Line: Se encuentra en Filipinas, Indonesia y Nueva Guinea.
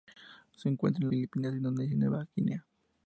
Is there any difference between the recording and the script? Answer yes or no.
no